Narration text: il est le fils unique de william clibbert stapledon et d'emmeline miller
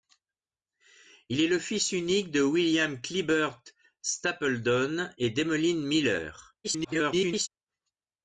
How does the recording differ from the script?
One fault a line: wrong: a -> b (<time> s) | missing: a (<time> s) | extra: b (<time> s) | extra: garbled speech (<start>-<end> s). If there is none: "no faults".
extra: garbled speech (6.6-7.5 s)